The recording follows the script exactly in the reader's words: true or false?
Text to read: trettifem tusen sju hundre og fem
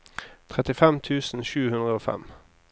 true